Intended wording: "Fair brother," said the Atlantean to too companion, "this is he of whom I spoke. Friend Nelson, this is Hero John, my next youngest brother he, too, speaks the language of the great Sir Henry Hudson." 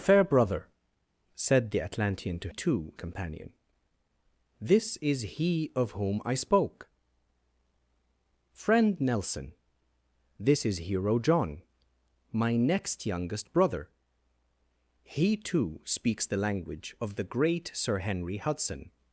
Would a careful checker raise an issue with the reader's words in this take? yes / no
no